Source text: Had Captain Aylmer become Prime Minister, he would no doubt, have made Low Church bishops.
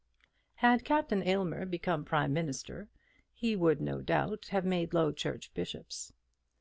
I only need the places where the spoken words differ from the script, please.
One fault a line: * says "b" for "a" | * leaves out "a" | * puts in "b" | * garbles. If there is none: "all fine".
all fine